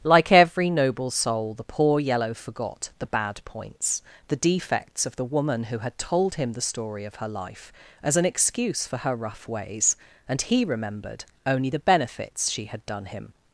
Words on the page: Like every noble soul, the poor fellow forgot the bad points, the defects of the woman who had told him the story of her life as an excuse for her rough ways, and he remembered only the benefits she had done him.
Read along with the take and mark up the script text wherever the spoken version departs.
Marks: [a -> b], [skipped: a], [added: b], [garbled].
Like every noble soul, the poor [fellow -> yellow] forgot the bad points, the defects of the woman who had told him the story of her life as an excuse for her rough ways, and he remembered only the benefits she had done him.